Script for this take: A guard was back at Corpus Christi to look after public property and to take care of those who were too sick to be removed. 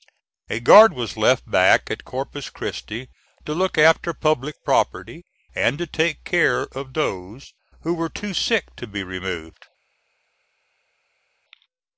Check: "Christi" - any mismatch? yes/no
no